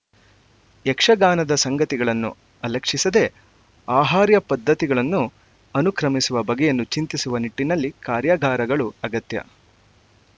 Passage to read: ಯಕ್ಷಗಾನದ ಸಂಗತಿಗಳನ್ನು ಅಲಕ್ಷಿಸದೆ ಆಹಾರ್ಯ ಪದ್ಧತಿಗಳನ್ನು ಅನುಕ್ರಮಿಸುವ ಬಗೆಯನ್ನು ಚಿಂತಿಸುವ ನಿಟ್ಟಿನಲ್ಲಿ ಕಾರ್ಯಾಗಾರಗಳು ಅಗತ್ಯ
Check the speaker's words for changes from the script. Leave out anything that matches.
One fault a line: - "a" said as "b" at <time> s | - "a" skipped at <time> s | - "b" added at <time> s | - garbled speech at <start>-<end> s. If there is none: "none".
none